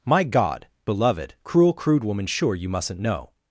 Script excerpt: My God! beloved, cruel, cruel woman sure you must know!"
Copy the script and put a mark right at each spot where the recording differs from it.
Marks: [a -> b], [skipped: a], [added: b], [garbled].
My God! beloved, cruel, [cruel -> crude] woman sure you [must -> mustn't] know!"